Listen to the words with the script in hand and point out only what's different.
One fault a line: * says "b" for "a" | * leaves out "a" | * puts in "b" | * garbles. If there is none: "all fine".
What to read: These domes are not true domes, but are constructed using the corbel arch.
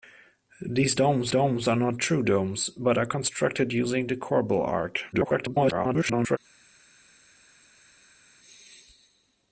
* puts in "domes"
* garbles